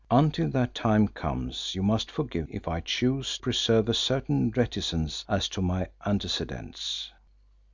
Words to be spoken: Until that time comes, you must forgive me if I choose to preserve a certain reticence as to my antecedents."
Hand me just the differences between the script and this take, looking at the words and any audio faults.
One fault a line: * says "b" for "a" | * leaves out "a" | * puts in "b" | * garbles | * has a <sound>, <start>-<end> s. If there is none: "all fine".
* leaves out "me"
* leaves out "to"